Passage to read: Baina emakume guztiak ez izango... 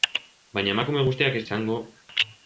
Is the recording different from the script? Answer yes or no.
no